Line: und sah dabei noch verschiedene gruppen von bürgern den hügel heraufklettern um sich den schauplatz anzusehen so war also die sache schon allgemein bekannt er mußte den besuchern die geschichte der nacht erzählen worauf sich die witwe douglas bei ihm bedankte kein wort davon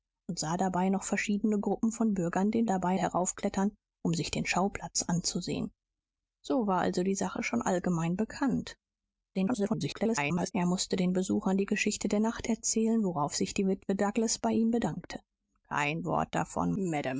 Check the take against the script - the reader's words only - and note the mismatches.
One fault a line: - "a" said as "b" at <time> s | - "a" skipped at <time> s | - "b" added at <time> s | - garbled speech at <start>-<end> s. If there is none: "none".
- "hügel" said as "dabei" at 2.7 s
- garbled speech at 9.3-10.5 s